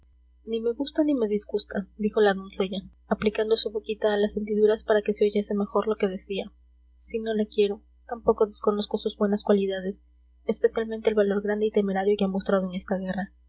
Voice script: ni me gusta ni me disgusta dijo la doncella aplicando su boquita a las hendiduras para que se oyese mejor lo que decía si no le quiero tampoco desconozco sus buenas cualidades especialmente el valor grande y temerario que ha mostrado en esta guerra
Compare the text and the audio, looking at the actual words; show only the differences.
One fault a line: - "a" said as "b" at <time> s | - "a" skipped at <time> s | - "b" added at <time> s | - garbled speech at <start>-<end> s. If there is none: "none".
none